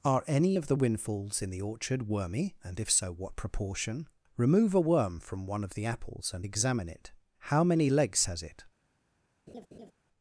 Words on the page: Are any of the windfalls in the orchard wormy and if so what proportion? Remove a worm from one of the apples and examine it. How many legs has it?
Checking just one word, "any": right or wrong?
right